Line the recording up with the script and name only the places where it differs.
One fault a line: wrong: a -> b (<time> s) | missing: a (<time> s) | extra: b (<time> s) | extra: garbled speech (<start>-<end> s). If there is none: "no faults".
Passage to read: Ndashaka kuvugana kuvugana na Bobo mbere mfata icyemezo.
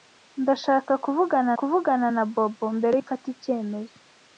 no faults